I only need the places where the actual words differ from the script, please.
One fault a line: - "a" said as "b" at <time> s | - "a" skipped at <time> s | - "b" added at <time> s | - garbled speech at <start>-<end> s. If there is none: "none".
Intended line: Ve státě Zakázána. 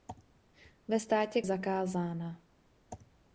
none